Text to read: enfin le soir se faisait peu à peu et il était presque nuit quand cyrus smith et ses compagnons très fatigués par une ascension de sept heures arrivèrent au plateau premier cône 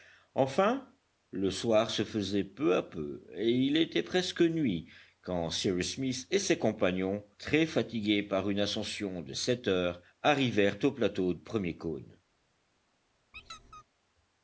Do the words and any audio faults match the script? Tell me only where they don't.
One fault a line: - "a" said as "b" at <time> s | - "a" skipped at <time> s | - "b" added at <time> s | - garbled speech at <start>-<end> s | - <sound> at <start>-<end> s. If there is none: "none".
- squeak at 13.3-13.8 s